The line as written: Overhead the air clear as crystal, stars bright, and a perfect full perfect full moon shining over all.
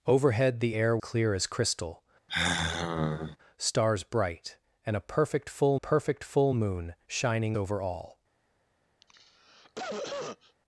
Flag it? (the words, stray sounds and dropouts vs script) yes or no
yes